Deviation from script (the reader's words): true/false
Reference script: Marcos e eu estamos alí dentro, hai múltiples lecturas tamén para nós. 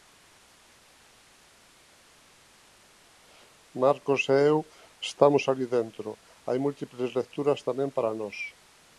false